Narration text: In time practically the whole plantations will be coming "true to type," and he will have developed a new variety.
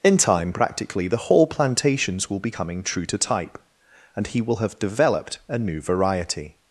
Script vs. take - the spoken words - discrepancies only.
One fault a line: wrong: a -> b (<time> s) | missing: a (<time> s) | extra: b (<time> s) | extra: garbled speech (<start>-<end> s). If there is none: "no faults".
no faults